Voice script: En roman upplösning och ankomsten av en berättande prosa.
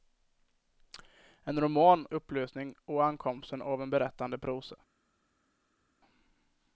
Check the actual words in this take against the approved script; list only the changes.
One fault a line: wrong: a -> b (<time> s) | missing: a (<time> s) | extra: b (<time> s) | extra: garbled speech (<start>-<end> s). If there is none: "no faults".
no faults